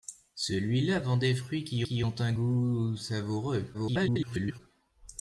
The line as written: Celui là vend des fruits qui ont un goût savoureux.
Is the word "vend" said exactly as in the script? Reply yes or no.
yes